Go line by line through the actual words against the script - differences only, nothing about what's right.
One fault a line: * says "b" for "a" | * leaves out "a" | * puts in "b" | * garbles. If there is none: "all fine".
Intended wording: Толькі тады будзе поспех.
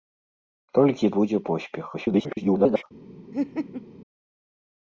* leaves out "тады"
* garbles